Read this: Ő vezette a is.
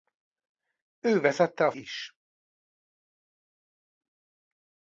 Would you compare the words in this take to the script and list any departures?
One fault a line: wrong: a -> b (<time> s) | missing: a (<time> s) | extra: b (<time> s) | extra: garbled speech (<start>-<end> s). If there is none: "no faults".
no faults